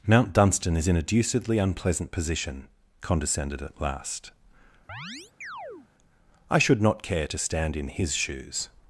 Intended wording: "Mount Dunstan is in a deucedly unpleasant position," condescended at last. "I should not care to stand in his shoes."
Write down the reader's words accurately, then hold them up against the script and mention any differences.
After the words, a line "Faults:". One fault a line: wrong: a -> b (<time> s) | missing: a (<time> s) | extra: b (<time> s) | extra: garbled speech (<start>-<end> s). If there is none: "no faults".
"Mount Dunstan is in a deucedly unpleasant position," condescended at last. "I should not care to stand in his shoes."
Faults:
no faults